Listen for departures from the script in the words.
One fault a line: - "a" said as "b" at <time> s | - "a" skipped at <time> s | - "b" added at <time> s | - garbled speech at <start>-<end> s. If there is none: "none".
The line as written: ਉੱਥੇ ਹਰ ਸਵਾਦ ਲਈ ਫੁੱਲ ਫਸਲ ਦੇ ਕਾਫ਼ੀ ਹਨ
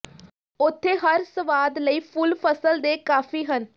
none